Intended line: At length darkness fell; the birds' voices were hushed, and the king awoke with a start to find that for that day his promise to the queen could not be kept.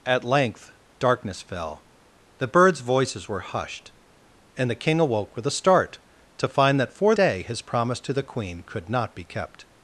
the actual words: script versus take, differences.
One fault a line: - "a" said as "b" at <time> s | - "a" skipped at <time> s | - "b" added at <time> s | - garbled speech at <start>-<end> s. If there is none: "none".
- "that" skipped at 7.1 s